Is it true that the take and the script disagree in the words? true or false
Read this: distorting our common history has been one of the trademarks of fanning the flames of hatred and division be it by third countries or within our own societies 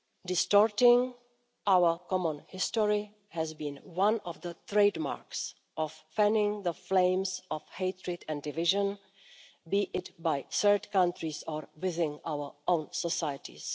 false